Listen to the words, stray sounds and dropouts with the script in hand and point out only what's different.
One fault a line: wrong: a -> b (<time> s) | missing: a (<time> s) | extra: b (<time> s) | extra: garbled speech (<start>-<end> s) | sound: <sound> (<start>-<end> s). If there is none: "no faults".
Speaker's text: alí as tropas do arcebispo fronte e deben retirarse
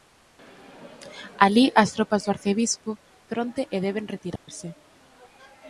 sound: dropout (4.4-4.5 s)